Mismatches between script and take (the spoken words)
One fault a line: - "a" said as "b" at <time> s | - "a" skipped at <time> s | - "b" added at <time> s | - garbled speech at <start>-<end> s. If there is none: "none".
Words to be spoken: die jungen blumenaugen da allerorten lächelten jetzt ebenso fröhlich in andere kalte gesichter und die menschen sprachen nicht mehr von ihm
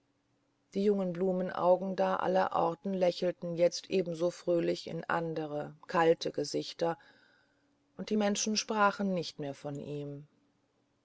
none